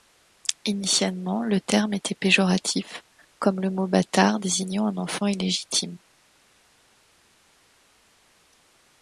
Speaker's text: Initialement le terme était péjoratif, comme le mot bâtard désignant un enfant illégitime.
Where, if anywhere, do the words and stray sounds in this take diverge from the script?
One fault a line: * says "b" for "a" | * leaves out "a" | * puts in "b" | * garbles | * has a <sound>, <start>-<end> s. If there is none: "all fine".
all fine